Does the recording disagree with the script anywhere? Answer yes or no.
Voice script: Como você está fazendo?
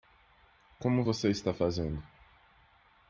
no